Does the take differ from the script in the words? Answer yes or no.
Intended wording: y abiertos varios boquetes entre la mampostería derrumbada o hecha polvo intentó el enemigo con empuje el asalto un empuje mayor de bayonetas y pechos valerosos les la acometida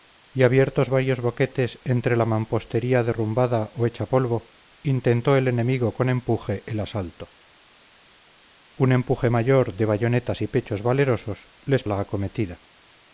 no